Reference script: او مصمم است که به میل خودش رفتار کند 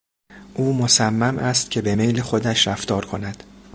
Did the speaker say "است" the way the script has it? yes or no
yes